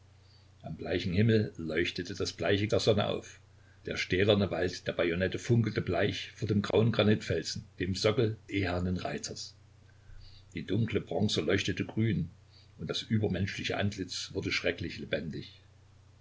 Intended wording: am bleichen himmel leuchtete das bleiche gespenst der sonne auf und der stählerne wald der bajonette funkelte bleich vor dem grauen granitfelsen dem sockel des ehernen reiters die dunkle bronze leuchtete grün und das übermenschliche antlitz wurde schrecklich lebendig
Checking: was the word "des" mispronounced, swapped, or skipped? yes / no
yes